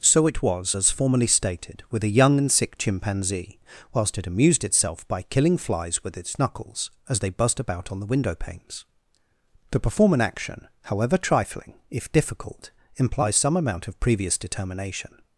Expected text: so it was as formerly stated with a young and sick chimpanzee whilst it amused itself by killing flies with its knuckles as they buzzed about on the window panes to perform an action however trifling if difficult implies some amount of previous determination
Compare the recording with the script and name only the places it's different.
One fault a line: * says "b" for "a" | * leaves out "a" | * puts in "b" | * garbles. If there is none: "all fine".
all fine